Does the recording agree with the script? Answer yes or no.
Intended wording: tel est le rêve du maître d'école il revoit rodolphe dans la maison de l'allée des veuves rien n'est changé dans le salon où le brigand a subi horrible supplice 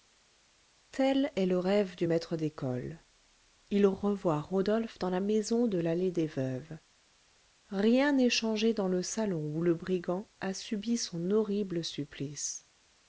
no